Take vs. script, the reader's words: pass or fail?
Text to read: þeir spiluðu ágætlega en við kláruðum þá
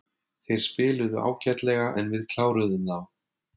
pass